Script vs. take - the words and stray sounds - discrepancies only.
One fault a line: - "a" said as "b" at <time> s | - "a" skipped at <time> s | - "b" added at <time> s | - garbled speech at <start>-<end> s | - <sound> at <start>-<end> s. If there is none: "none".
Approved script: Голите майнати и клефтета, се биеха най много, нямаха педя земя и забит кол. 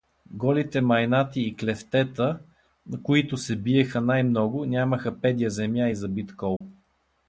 - "които" added at 3.0 s
- dropout at 6.6-6.6 s